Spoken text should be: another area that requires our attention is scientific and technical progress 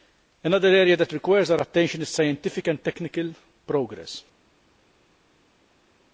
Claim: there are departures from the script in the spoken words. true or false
false